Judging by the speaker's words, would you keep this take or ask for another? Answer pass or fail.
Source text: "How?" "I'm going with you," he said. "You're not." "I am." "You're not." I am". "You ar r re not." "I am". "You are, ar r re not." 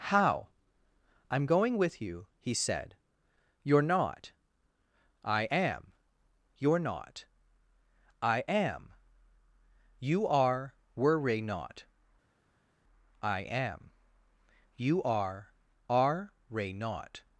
fail